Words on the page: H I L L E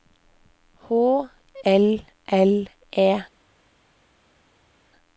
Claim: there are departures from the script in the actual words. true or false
true